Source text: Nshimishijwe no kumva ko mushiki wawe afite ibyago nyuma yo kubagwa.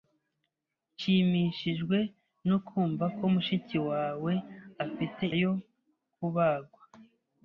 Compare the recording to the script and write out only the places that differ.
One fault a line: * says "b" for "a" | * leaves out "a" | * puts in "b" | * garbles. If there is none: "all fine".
* leaves out "ibyago nyuma"